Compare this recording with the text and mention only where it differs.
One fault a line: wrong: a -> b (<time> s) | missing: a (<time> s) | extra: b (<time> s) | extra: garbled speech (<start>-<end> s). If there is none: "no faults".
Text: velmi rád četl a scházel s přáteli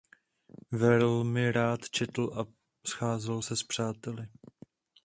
extra: se (3.4 s)